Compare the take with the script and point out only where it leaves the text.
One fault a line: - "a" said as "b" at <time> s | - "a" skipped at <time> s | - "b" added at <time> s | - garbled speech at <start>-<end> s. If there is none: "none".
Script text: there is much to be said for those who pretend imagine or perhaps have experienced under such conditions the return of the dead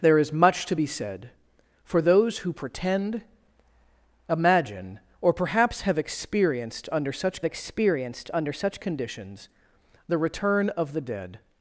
- "experienced under such" added at 7.4 s